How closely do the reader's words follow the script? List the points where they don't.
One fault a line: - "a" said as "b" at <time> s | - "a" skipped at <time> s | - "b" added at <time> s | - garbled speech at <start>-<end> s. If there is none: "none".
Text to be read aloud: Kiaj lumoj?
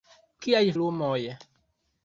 none